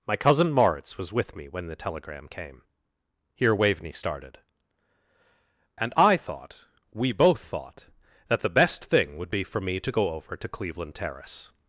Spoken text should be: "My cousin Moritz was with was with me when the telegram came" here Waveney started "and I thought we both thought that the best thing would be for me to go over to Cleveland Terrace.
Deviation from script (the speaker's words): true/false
true